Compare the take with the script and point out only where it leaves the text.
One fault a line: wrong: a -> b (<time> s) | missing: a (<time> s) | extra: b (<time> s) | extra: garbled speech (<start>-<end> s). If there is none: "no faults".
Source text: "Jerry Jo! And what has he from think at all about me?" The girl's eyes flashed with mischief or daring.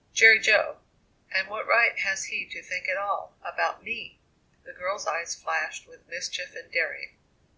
extra: right (1.7 s)
wrong: from -> to (2.5 s)
wrong: or -> and (6.6 s)